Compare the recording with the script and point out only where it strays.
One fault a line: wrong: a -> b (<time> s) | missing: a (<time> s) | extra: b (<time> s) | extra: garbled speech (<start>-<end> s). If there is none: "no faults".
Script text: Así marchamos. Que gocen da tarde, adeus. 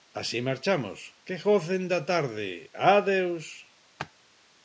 no faults